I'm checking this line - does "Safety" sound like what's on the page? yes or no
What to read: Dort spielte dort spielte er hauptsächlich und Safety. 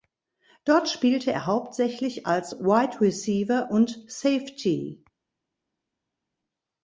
yes